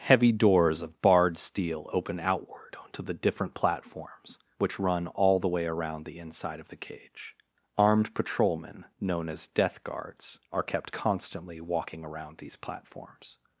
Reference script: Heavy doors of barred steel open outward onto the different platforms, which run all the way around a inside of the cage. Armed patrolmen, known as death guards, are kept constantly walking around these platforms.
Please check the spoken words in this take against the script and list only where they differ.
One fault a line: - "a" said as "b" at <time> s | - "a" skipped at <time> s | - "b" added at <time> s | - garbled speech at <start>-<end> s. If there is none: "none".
- "a" said as "the" at 6.0 s